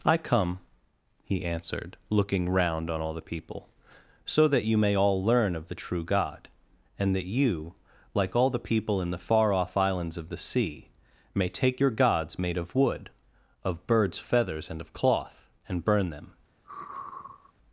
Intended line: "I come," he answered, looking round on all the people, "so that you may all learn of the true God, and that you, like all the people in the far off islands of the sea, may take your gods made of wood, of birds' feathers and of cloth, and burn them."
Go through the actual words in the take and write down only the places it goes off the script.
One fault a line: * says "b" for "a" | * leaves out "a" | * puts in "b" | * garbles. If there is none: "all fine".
all fine